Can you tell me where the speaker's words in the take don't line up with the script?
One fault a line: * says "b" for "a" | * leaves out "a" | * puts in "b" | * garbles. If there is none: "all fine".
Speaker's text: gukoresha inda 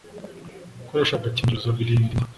* puts in "agakingirizo birinda"